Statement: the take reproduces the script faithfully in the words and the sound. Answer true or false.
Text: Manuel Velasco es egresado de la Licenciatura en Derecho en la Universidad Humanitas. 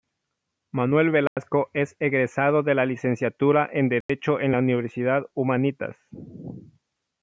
false